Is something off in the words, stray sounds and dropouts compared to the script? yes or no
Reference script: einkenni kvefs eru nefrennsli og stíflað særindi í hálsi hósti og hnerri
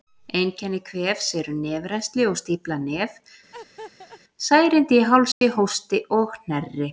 yes